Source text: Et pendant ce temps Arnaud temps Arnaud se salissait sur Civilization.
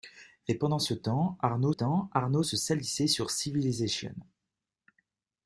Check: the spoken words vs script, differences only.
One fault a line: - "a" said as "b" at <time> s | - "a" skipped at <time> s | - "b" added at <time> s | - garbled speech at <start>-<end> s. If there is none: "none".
none